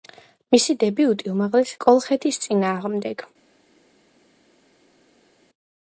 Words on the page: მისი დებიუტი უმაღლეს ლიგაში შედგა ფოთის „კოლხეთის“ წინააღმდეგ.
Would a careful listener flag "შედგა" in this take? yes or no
yes